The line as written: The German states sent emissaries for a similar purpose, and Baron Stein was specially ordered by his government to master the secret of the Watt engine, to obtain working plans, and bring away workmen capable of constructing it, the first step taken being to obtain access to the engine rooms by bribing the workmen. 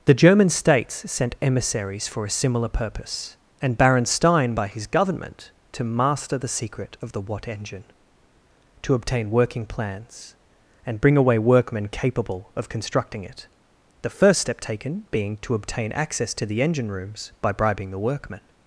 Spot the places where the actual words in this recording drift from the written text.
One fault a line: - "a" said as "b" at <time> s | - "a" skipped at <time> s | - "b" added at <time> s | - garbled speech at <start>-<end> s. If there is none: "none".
- "was specially ordered" skipped at 4.5 s